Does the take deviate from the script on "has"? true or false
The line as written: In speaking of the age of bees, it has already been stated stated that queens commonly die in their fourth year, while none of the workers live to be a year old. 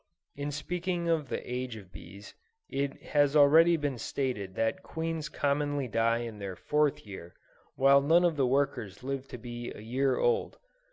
false